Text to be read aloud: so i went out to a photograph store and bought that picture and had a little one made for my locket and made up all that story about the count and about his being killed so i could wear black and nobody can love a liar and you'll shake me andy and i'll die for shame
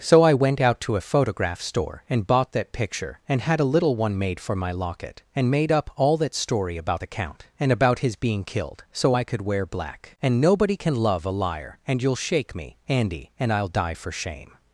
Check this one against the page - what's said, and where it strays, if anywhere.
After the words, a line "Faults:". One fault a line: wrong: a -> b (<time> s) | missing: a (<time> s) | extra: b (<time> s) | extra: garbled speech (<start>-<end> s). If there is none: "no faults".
so i went out to a photograph store and bought that picture and had a little one made for my locket and made up all that story about the count and about his being killed so i could wear black and nobody can love a liar and you'll shake me andy and i'll die for shame
Faults:
no faults